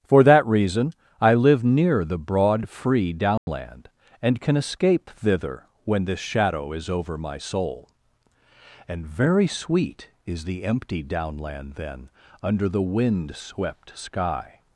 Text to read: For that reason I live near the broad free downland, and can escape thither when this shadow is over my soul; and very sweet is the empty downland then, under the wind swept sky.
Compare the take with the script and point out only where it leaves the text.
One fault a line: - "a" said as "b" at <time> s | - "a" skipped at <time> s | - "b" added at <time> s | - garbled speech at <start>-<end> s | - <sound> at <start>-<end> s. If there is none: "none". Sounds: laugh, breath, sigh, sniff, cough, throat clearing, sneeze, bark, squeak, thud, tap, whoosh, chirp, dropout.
- dropout at 3.4-3.5 s